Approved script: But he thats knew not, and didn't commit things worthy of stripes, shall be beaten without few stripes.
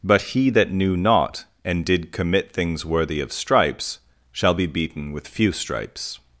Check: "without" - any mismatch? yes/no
yes